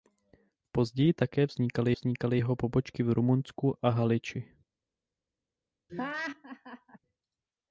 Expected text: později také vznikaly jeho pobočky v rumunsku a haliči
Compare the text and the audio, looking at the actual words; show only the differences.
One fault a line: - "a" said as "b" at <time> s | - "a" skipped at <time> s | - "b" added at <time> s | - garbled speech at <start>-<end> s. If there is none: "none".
- "vznikaly" added at 1.9 s